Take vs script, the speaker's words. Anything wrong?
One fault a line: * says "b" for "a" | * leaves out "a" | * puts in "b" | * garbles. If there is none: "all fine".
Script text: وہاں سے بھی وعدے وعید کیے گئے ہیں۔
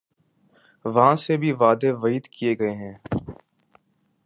all fine